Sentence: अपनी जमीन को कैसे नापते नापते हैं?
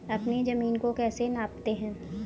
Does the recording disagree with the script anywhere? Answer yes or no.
yes